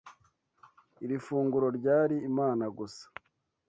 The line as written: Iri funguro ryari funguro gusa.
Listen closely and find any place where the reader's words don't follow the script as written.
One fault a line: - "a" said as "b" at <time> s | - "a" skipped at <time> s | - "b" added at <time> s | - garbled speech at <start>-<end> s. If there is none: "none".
- "funguro" said as "imana" at 2.3 s